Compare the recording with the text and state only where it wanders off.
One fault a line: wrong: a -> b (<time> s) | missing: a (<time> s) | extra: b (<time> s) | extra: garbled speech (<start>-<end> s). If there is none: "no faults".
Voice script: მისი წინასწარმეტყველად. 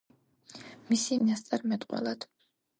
no faults